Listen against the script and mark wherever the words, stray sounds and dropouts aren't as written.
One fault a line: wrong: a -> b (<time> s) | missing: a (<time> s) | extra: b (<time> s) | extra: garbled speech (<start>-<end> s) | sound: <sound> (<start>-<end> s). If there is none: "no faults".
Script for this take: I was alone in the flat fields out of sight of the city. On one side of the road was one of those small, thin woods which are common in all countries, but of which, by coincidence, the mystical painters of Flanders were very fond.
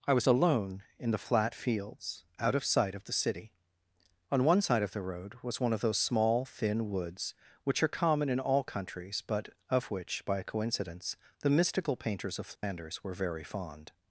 sound: dropout (12.6-12.6 s)